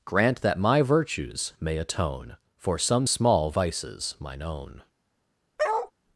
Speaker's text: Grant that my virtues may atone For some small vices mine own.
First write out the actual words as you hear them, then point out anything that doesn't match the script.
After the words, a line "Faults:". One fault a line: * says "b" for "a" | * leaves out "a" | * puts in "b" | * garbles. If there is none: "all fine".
Grant that my virtues may atone For some small vices mine own.
Faults:
all fine